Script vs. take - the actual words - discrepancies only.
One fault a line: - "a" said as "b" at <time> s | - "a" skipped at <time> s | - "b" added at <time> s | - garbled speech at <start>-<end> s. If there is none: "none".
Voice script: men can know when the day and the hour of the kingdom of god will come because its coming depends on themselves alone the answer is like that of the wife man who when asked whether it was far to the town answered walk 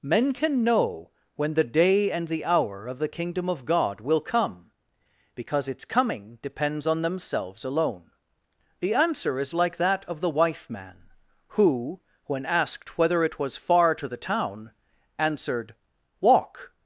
none